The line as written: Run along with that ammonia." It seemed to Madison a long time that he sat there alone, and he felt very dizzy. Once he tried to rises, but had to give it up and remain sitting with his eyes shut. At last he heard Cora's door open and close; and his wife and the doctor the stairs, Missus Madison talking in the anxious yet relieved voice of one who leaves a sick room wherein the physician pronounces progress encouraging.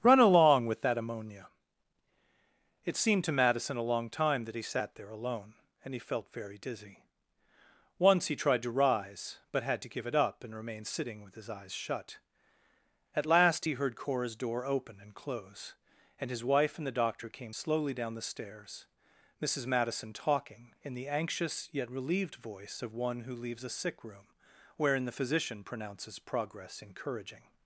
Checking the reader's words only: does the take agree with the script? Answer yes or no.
no